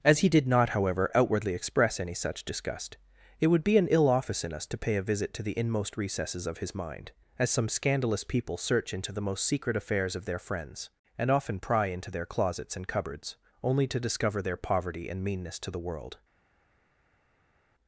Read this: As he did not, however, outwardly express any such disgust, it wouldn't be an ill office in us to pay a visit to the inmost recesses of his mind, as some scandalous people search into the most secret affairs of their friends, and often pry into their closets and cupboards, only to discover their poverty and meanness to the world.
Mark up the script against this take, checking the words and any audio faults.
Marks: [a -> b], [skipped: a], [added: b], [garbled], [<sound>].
As he did not, however, outwardly express any such disgust, it [wouldn't -> would] be an ill office in us to pay a visit to the inmost recesses of his mind, as some scandalous people search into the most secret affairs of their friends, and often pry into their closets and cupboards, only to discover their poverty and meanness to the world.